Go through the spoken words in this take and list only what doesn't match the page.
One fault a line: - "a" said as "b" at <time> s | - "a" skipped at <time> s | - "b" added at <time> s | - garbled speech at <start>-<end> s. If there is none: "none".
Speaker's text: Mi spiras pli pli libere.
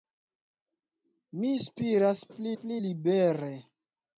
none